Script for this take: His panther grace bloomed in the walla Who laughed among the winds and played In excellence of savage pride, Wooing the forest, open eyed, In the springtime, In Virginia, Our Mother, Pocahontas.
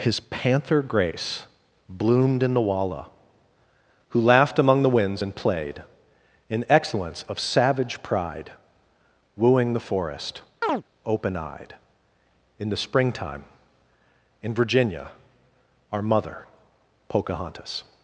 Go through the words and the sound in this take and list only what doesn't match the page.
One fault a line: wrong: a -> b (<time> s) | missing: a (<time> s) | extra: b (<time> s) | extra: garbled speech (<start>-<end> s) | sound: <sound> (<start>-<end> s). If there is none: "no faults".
sound: chirp (10.6-10.8 s)